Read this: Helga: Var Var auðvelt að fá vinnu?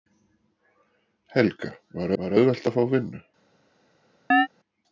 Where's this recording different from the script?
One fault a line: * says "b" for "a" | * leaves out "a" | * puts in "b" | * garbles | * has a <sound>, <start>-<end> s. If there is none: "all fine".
* has a chirp, 4.3-4.5 s